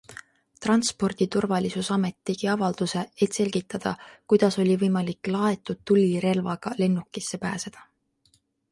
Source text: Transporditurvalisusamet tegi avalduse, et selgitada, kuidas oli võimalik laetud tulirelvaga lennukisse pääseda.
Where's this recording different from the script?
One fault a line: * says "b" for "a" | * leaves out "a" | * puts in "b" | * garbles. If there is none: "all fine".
all fine